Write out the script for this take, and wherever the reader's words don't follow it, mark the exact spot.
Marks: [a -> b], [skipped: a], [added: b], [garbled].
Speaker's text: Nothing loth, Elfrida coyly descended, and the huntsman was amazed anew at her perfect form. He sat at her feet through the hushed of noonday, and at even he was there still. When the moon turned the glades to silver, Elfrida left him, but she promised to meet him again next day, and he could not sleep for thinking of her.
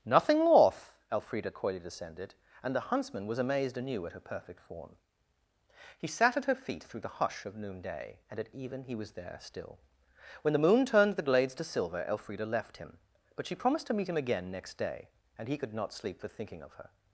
Nothing loth, Elfrida coyly descended, and the huntsman was amazed anew at her perfect form. He sat at her feet through the [hushed -> hush] of noonday, and at even he was there still. When the moon turned the glades to silver, Elfrida left him, but she promised to meet him again next day, and he could not sleep for thinking of her.